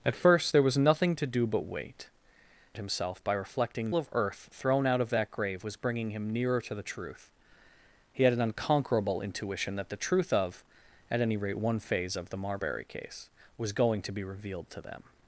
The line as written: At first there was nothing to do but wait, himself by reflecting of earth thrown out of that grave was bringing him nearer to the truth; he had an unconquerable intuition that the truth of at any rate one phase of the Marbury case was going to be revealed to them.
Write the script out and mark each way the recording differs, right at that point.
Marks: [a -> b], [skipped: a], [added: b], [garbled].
At first there was nothing to do but wait, himself by reflecting of earth thrown out of that grave was bringing him nearer to the truth; he had an unconquerable intuition that the truth of at any rate one phase of the Marbury case was going to be revealed to them.